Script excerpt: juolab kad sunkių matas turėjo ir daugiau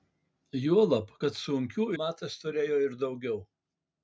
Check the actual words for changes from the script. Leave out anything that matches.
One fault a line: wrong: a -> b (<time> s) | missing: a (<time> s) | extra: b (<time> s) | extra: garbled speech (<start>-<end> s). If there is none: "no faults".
no faults